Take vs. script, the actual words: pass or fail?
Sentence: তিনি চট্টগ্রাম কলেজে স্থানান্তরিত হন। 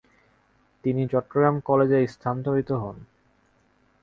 pass